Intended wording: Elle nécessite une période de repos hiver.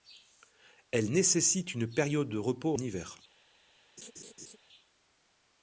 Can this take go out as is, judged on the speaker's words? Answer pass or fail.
pass